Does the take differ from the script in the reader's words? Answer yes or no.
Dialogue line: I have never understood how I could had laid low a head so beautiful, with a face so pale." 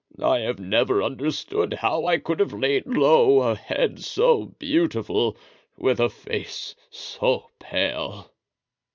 yes